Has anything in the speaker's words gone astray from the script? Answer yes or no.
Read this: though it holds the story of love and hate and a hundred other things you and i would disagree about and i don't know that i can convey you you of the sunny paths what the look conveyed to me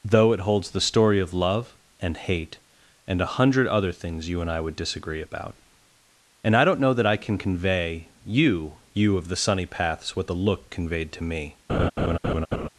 no